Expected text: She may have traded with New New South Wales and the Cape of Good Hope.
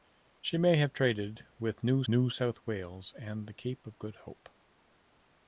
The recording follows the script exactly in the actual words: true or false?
true